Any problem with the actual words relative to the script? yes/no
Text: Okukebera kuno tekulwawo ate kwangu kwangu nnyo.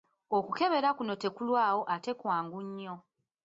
yes